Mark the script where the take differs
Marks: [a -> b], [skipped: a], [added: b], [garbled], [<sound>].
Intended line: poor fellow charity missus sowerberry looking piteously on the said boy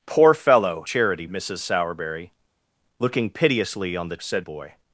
poor fellow charity missus sowerberry looking piteously on the said boy